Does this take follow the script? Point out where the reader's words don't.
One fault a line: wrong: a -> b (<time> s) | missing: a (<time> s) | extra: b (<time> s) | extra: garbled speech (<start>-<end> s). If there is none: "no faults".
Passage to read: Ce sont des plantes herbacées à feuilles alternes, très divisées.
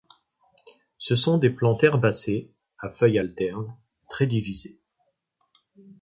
no faults